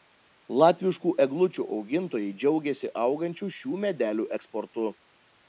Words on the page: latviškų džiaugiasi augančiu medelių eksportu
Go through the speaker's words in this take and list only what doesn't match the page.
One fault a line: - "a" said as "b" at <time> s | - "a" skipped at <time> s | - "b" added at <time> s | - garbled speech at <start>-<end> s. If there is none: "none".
- "eglučių augintojai" added at 1.2 s
- "šių" added at 3.6 s